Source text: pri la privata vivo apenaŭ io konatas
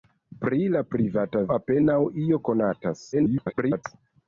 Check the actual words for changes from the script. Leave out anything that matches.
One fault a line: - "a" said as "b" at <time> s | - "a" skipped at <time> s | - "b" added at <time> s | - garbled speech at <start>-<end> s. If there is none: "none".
- "vivo" skipped at 1.4 s
- garbled speech at 3.1-3.8 s